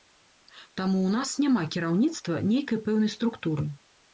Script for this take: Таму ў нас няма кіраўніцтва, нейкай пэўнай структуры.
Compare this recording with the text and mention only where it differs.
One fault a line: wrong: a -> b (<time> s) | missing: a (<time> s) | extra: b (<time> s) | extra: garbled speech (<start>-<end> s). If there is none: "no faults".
no faults